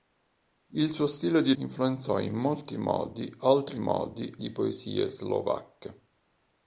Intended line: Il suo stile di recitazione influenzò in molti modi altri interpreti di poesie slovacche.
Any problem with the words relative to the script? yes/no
yes